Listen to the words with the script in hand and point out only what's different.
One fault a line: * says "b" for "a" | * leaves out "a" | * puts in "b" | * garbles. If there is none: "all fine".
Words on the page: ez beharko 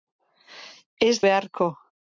all fine